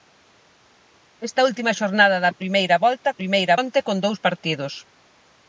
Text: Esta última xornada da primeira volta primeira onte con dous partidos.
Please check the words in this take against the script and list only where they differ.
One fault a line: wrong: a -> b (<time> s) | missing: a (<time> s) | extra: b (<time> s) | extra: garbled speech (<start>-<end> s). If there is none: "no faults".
no faults